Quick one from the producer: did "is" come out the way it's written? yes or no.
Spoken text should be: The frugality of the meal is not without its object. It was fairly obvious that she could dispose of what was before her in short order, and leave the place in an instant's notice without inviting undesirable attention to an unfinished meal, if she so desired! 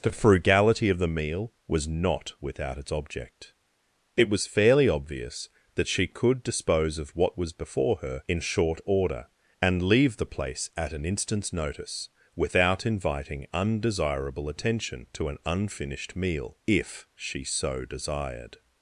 no